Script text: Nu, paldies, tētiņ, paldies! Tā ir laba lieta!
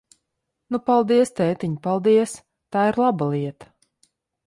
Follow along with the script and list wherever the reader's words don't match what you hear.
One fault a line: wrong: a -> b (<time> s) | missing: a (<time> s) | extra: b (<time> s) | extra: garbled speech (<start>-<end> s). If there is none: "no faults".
no faults